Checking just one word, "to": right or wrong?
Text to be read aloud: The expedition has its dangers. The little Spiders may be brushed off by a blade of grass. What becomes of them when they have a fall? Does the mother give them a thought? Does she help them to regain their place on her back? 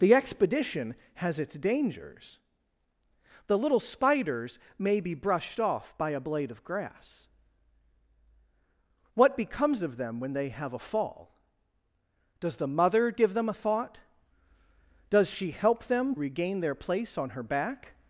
wrong